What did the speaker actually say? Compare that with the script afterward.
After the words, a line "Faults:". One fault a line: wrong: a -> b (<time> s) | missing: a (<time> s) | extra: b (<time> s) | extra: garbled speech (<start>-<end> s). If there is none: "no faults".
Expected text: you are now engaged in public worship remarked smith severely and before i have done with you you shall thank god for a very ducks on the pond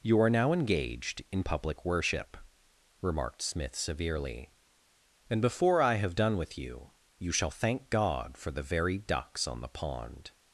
you are now engaged in public worship remarked smith severely and before i have done with you you shall thank god for the very ducks on the pond
Faults:
wrong: a -> the (8.5 s)